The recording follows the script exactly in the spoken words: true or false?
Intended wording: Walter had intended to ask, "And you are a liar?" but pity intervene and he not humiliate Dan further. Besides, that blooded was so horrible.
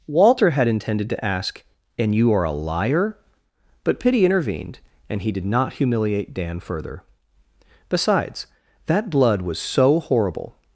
false